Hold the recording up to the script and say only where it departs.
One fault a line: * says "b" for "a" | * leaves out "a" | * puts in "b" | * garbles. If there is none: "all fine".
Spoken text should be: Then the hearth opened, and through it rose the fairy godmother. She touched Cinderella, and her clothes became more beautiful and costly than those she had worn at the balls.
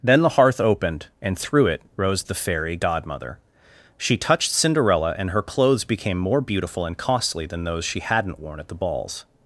* says "hadn't" for "had"